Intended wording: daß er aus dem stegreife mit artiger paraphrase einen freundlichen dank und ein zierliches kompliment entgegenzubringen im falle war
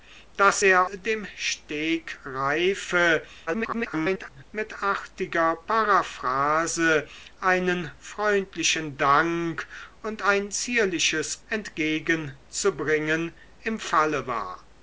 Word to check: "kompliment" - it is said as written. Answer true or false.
false